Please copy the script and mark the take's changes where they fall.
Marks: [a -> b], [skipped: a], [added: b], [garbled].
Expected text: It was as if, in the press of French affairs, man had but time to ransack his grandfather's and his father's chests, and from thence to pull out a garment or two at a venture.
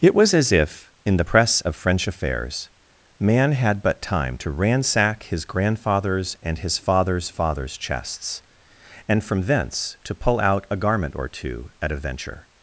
It was as if, in the press of French affairs, man had but time to ransack his grandfather's and his father's [added: father's] chests, and from thence to pull out a garment or two at a venture.